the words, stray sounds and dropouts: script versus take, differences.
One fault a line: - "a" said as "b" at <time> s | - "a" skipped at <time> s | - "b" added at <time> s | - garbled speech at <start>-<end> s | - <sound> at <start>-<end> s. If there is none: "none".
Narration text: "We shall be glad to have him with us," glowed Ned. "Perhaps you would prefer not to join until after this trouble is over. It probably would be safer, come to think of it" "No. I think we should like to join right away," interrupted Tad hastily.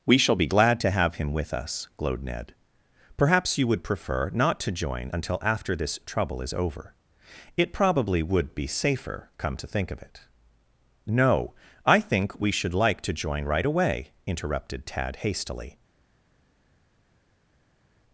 none